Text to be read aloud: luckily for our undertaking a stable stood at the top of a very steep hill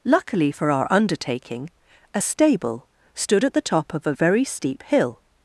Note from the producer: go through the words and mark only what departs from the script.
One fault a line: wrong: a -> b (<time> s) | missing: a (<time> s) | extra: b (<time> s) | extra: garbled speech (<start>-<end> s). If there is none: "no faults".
no faults